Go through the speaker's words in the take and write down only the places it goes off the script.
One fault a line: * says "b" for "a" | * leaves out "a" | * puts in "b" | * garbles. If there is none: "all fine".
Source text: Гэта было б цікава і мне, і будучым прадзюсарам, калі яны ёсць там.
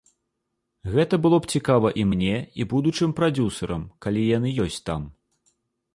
all fine